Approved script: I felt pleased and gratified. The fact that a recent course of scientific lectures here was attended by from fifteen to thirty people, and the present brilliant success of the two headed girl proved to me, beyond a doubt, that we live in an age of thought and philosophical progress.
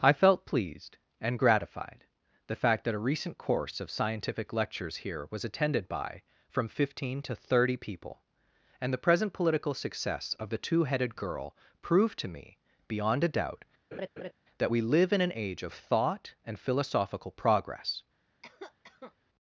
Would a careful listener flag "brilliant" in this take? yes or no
yes